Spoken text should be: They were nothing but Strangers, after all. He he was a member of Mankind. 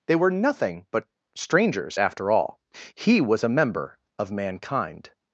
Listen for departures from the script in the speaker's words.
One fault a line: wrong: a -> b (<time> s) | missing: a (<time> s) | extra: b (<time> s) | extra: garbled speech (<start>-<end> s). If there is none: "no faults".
missing: he (3.2 s)